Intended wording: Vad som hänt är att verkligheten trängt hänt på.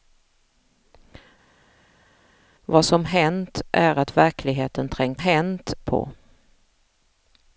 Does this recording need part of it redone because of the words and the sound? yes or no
no